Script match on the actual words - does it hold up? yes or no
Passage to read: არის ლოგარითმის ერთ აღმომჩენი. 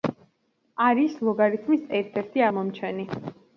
no